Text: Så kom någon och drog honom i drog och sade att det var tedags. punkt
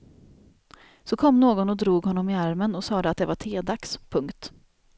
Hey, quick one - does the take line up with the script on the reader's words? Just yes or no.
no